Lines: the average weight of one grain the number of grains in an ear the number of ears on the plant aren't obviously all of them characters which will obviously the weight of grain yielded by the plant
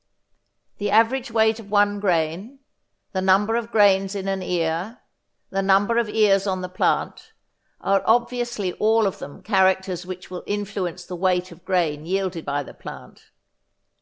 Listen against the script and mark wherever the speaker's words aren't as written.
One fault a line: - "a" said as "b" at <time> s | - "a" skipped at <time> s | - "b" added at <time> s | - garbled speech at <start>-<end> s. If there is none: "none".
- "aren't" said as "are" at 7.8 s
- "obviously" said as "influence" at 10.5 s